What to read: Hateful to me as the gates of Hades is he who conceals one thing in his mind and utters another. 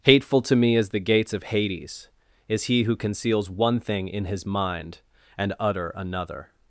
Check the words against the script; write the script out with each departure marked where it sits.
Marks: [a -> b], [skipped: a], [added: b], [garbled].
Hateful to me as the gates of Hades is he who conceals one thing in his mind and [utters -> utter] another.